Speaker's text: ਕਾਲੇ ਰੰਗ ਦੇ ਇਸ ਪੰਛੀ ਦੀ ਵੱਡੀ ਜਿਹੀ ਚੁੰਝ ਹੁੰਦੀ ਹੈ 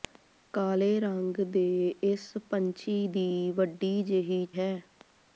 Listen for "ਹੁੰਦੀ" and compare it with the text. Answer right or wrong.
wrong